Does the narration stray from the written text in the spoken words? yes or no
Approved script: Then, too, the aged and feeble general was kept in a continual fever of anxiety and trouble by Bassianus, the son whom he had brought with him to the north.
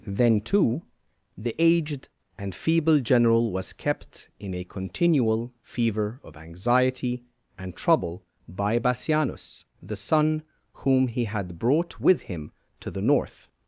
no